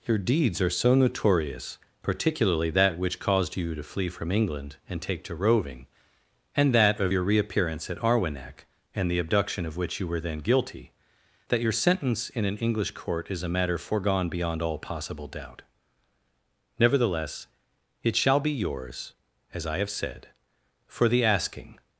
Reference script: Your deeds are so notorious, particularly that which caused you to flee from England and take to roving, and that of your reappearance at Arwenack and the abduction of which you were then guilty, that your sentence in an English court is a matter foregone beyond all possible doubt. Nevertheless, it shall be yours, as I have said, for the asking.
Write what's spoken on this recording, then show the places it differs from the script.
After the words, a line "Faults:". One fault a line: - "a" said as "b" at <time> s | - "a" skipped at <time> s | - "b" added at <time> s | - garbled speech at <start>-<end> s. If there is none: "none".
Your deeds are so notorious, particularly that which caused you to flee from England and take to roving, and that of your reappearance at Arwenack and the abduction of which you were then guilty, that your sentence in an English court is a matter foregone beyond all possible doubt. Nevertheless, it shall be yours, as I have said, for the asking.
Faults:
none